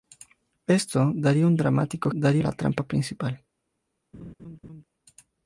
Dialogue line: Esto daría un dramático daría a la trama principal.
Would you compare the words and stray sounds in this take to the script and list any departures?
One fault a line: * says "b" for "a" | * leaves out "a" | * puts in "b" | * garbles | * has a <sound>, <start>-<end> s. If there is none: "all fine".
* has a laugh, 4.1-4.8 s